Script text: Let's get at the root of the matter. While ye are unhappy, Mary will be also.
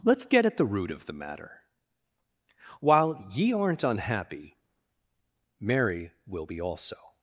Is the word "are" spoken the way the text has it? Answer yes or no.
no